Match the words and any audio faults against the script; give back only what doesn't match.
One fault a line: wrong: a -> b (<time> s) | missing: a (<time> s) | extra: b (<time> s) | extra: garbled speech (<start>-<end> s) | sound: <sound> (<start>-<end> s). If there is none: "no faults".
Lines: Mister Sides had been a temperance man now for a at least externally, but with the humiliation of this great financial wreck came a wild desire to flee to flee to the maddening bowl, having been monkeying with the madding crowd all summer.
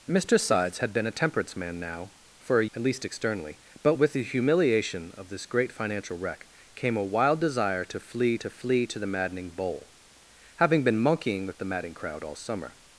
no faults